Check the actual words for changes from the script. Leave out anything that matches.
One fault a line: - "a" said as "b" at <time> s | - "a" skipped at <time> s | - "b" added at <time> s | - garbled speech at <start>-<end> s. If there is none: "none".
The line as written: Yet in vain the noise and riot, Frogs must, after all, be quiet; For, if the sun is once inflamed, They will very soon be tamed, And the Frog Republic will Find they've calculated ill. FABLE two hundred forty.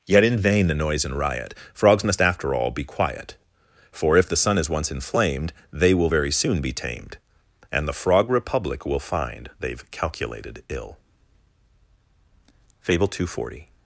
none